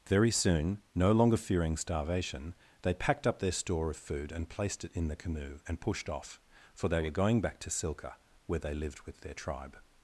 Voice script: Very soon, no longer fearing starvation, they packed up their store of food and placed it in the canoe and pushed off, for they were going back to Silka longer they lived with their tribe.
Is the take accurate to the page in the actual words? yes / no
no